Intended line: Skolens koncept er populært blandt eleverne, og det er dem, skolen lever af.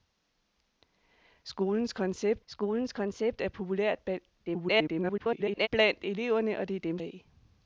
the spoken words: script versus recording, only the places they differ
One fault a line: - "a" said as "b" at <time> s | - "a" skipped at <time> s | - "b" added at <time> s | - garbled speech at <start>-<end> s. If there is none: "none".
- "skolens koncept" added at 2.5 s
- garbled speech at 4.5-5.7 s
- "skolen lever" skipped at 7.0 s